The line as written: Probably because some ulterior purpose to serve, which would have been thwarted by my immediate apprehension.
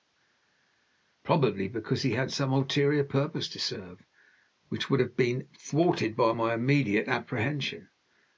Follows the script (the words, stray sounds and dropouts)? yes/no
no